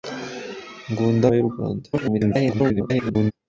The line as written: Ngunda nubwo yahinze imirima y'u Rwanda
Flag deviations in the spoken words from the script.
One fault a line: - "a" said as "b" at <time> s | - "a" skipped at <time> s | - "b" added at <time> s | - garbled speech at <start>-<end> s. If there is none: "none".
- "nubwo yahinze imirima" skipped at 1.3 s
- garbled speech at 1.9-3.3 s